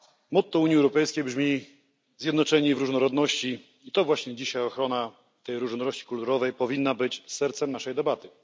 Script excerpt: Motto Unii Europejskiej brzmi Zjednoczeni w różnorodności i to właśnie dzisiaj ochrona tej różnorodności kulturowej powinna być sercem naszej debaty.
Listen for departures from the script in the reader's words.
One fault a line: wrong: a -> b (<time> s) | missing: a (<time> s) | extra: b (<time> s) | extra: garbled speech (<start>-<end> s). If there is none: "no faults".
no faults